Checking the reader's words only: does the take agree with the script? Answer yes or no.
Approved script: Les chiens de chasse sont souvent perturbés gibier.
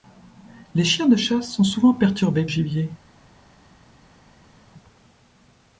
yes